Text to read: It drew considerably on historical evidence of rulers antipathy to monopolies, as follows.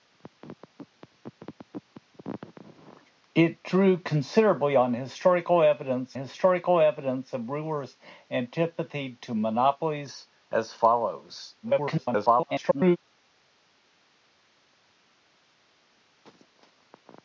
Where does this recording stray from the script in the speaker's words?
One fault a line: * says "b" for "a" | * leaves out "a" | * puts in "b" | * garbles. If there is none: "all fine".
* puts in "historical evidence"
* garbles